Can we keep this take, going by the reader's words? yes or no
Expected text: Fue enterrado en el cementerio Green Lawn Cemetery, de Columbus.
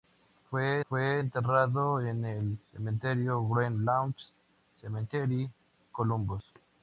no